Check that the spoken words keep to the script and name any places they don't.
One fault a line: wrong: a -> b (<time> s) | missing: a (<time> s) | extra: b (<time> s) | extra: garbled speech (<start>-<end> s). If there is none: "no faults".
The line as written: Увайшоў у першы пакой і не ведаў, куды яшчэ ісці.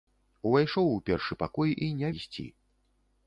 missing: ведаў куды яшчэ (2.1 s)